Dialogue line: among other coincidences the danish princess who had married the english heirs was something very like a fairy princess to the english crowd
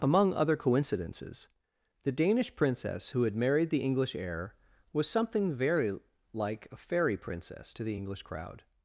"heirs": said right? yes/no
no